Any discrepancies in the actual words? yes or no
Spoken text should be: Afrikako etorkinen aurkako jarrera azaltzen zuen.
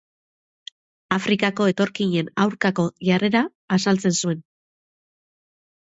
no